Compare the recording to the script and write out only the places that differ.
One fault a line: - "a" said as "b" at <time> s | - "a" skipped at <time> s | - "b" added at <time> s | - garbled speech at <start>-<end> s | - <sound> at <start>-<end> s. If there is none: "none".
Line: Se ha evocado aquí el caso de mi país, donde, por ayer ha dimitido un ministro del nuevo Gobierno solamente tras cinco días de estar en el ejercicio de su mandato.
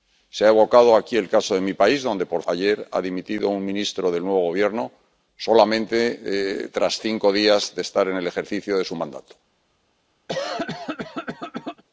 - cough at 10.3-11.8 s